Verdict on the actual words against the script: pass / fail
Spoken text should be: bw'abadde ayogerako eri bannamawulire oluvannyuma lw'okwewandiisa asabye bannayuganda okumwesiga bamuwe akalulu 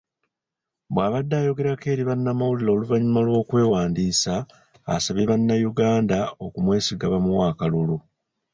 pass